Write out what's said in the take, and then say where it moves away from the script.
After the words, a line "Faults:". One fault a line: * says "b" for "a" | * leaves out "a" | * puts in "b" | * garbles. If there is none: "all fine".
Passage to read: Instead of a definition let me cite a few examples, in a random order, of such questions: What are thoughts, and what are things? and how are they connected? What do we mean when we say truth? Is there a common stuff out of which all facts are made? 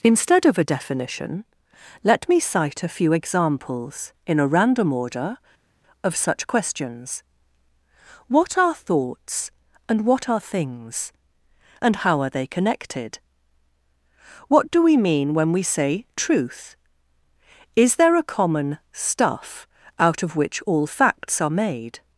Instead of a definition let me cite a few examples, in a random order, of such questions: What are thoughts, and what are things? and how are they connected? What do we mean when we say truth? Is there a common stuff out of which all facts are made?
Faults:
all fine